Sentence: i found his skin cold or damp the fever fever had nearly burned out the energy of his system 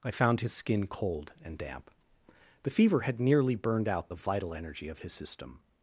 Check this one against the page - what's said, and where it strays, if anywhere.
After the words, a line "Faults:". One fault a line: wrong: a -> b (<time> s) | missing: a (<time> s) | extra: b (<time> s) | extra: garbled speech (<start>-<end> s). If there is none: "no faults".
i found his skin cold and damp the fever had nearly burned out the vital energy of his system
Faults:
wrong: or -> and (1.4 s)
missing: fever (3.0 s)
extra: vital (4.1 s)